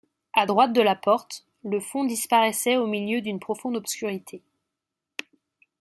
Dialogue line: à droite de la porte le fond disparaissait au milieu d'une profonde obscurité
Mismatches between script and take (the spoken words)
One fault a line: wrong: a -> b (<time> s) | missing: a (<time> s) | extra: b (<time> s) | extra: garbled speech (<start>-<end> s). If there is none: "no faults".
no faults